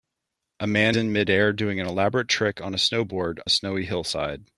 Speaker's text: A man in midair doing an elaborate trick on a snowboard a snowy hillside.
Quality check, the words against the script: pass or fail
pass